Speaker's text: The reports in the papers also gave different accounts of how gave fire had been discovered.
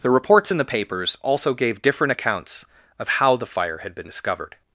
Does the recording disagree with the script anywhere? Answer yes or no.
yes